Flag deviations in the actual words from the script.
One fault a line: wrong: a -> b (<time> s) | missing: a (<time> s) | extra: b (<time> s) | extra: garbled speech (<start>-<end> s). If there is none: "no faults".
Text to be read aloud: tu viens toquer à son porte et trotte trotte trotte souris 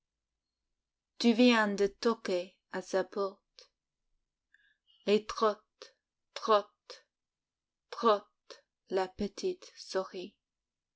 extra: de (1.8 s)
wrong: son -> sa (2.8 s)
extra: la petite (8.9 s)